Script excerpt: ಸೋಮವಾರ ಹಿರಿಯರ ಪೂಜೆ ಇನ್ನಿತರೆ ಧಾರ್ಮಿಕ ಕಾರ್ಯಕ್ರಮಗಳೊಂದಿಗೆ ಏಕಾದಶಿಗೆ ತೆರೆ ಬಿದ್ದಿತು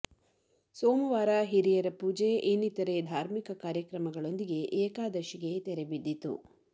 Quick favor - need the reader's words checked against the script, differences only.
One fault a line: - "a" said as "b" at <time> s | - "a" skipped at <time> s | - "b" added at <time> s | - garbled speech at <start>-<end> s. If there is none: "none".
none